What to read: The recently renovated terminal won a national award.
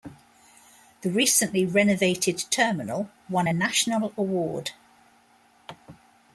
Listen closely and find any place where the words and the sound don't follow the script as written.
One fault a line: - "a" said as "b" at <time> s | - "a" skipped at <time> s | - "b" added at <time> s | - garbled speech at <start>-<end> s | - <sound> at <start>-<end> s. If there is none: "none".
none